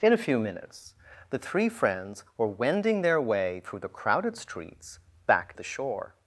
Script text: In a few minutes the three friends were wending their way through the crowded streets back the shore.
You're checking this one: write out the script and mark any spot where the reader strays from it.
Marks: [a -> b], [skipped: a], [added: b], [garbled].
In a few minutes the three friends were wending their way through the crowded streets back the shore.